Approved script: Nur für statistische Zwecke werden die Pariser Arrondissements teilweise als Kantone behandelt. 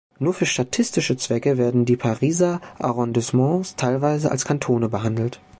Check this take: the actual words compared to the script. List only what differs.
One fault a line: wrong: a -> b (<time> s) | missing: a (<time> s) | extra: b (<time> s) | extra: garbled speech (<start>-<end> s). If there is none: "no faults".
no faults